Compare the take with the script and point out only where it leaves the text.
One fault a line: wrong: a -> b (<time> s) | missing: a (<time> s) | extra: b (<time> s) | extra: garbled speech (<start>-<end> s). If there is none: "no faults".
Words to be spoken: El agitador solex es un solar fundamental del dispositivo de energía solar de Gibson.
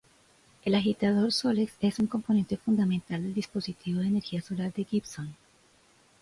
wrong: solar -> componente (2.1 s)